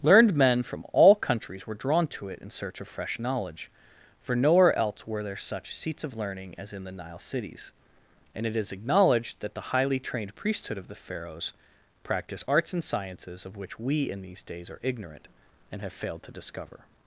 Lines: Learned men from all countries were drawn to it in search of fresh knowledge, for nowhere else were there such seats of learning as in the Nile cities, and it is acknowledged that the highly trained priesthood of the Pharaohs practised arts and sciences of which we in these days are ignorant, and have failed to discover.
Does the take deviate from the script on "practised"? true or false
true